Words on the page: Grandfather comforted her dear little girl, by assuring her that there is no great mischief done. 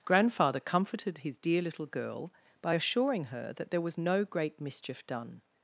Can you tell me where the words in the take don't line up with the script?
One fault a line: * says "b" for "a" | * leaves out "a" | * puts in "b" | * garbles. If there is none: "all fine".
* says "his" for "her"
* says "was" for "is"